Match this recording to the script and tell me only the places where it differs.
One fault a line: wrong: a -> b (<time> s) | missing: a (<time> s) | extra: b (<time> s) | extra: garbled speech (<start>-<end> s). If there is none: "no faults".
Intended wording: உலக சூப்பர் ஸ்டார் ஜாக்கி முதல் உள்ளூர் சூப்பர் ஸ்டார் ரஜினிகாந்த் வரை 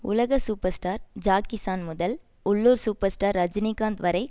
extra: சான் (1.6 s)